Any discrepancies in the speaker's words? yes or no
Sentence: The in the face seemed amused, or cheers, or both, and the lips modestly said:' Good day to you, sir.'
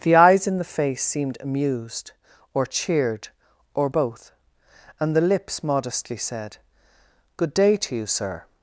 yes